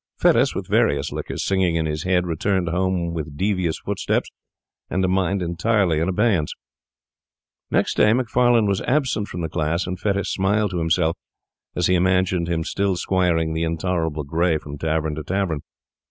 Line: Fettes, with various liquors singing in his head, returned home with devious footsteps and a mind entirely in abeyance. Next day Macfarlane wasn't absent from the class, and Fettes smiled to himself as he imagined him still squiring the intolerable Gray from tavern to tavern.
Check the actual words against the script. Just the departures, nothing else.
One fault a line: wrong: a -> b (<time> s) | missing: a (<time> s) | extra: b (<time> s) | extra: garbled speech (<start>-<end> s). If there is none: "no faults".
wrong: wasn't -> was (8.7 s)